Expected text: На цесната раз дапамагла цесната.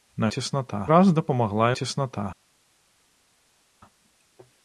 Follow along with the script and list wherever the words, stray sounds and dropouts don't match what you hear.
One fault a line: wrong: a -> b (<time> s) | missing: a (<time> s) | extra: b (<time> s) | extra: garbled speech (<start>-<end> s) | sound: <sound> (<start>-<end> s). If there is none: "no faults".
no faults